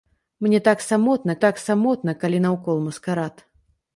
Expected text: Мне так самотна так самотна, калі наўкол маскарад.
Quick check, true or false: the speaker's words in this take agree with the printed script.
true